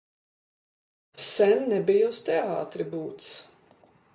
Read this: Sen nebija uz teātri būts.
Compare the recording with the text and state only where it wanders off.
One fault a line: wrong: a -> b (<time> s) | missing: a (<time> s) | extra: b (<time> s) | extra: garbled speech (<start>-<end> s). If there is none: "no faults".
no faults